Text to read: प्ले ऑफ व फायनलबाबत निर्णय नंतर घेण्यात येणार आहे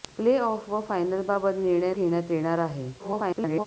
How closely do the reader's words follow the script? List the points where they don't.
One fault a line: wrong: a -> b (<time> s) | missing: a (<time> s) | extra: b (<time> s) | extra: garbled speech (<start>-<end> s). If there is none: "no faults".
missing: नंतर (1.9 s)
extra: garbled speech (3.0-3.7 s)